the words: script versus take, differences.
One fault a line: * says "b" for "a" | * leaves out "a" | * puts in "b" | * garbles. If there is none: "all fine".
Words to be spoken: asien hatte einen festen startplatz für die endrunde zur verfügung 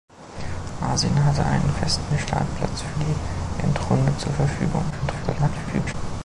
* garbles